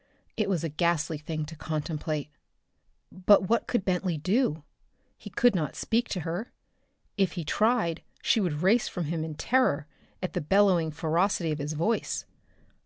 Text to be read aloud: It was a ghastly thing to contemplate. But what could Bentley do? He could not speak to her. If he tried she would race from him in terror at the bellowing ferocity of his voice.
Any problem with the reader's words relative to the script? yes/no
no